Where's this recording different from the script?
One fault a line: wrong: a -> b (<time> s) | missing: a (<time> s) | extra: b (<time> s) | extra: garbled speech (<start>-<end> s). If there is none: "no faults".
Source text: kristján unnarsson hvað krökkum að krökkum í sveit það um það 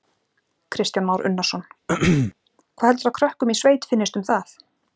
extra: már (1.1 s)
wrong: krökkum -> heldurðu (2.9 s)
wrong: það -> finnist (3.9 s)